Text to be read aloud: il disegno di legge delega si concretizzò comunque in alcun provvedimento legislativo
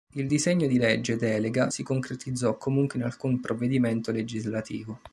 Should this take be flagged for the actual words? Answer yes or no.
no